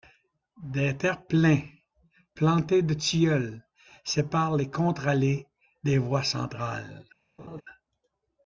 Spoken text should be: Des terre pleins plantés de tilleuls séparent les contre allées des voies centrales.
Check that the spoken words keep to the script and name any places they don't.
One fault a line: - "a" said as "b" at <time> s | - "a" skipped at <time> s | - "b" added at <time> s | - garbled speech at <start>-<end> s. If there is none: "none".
none